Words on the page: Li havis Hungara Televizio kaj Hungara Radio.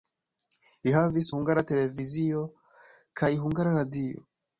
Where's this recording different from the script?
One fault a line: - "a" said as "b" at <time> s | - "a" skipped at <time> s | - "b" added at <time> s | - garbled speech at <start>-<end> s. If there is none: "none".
none